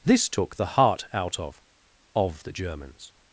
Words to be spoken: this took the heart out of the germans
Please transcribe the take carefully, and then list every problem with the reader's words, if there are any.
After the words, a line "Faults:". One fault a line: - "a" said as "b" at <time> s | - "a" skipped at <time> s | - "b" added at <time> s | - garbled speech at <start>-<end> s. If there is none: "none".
this took the heart out of of the germans
Faults:
- "of" added at 2.1 s